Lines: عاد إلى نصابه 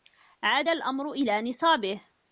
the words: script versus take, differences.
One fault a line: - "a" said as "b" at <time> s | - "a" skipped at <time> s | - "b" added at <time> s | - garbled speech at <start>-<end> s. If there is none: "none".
- "الأمر" added at 0.7 s